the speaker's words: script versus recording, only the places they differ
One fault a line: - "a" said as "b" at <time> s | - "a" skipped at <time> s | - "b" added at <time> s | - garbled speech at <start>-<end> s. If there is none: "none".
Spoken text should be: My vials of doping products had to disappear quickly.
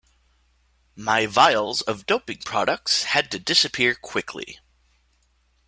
none